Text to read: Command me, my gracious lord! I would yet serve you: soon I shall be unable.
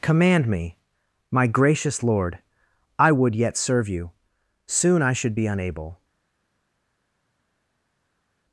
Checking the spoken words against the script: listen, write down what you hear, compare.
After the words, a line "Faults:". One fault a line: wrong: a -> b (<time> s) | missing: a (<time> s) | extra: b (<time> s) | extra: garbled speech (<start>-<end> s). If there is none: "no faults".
Command me, my gracious lord! I would yet serve you: soon I should be unable.
Faults:
wrong: shall -> should (5.1 s)